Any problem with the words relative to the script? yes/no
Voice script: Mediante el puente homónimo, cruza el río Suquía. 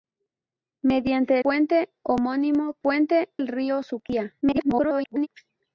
yes